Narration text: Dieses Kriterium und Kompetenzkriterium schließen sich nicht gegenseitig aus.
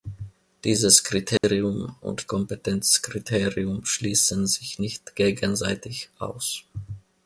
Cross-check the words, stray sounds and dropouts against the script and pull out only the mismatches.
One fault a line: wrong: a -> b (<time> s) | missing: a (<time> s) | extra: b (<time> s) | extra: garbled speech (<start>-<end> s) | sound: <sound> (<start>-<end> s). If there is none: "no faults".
sound: dropout (1.4-1.4 s)